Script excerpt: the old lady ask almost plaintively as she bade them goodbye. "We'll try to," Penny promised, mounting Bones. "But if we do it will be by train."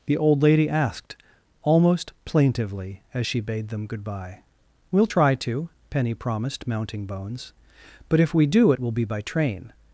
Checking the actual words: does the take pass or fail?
fail